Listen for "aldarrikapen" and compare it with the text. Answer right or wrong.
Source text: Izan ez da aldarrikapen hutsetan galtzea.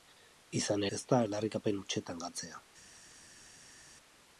right